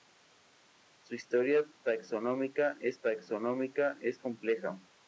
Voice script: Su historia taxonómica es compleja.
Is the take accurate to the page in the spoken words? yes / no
no